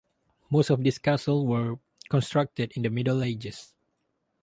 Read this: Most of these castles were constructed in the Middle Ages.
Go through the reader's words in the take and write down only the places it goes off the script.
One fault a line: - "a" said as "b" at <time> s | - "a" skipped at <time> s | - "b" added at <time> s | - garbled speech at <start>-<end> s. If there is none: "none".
none